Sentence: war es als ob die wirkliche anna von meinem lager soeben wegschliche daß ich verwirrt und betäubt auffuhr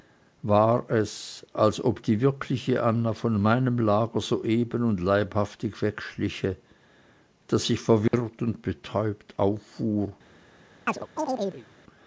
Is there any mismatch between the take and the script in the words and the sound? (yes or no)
yes